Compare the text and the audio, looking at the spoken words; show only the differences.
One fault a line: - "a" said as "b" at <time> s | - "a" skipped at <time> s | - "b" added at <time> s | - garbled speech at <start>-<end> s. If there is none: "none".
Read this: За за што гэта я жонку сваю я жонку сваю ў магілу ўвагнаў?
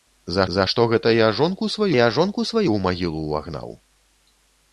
none